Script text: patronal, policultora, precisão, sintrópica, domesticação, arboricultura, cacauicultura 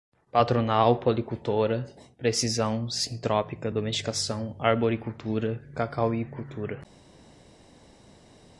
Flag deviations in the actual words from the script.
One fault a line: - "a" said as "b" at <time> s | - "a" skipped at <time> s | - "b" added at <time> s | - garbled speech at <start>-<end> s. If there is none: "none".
none